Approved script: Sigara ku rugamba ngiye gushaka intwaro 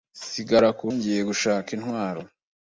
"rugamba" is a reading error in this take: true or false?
true